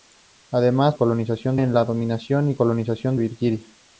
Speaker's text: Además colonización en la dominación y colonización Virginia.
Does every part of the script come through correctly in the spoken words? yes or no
yes